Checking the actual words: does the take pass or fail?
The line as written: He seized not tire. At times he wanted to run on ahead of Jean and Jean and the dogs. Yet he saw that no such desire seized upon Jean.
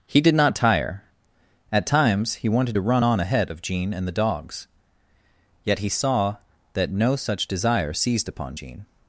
fail